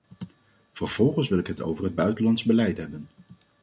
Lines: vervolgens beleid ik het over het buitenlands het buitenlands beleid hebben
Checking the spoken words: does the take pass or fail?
fail